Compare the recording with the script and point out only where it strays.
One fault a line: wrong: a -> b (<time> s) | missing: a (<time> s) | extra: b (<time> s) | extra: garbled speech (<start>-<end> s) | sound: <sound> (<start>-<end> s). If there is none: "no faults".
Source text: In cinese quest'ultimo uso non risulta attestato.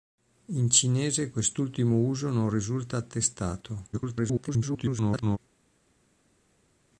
extra: garbled speech (3.9-5.4 s)